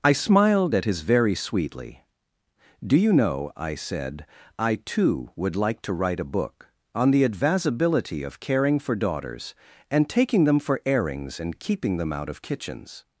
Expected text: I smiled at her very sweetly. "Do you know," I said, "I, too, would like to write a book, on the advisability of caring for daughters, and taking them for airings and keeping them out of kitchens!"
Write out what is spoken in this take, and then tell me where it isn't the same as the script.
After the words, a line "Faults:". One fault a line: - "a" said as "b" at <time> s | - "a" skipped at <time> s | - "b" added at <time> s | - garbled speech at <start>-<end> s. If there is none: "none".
I smiled at his very sweetly. "Do you know," I said, "I, too, would like to write a book, on the advisability of caring for daughters, and taking them for airings and keeping them out of kitchens!"
Faults:
- "her" said as "his" at 0.8 s